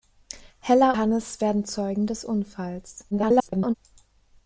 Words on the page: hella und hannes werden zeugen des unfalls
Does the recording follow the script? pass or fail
fail